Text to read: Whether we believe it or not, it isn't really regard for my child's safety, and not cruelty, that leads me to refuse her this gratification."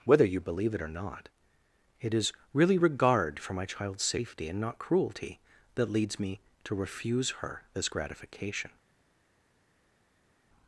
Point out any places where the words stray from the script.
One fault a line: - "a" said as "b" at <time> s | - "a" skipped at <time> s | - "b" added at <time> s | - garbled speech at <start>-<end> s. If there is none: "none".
- "we" said as "you" at 0.2 s
- "isn't" said as "is" at 2.1 s